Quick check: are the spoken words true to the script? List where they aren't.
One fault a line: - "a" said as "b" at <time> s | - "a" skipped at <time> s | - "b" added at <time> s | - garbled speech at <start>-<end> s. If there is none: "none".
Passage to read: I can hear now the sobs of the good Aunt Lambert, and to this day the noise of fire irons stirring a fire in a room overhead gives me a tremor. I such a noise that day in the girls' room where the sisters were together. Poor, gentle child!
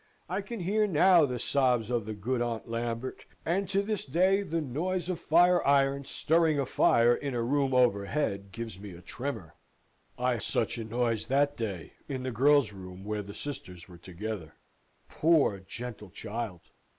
none